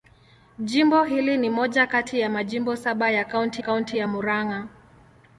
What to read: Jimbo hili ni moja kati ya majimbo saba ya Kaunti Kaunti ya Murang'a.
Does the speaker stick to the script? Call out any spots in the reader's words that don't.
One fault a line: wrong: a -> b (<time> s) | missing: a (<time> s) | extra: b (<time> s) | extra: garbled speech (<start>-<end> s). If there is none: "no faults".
no faults